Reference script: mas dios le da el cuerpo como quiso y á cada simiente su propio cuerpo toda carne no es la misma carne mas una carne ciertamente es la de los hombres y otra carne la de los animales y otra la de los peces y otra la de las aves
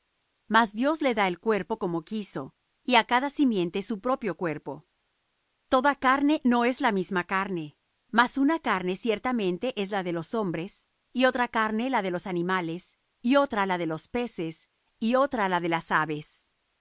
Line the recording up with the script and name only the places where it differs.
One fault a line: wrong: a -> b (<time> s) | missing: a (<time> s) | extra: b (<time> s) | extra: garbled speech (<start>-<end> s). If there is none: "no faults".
no faults